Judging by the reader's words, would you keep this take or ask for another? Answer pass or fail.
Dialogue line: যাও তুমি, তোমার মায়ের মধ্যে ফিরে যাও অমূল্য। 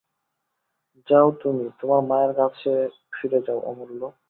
fail